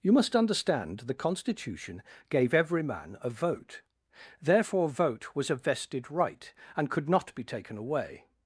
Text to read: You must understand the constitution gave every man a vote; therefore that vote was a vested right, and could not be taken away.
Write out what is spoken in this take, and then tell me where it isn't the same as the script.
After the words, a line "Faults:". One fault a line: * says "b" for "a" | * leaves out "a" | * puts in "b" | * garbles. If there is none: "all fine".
You must understand the constitution gave every man a vote; therefore vote was a vested right, and could not be taken away.
Faults:
* leaves out "that"